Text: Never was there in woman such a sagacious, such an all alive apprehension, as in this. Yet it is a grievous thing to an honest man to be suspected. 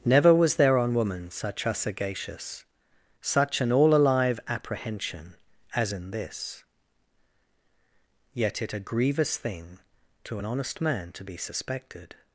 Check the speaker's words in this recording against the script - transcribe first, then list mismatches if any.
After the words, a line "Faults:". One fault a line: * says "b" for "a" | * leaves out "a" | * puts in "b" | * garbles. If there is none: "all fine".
Never was there on woman such a sagacious, such an all alive apprehension, as in this. Yet it a grievous thing to an honest man to be suspected.
Faults:
* says "on" for "in"
* leaves out "is"